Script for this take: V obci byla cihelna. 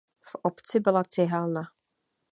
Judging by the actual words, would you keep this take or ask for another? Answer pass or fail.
pass